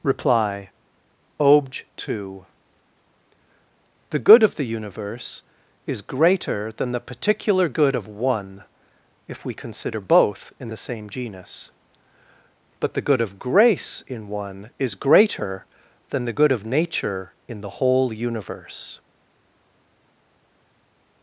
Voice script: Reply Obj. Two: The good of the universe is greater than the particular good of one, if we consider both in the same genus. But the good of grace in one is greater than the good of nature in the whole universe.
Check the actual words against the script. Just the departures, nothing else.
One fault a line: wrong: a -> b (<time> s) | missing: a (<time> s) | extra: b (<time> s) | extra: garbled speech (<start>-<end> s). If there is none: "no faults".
no faults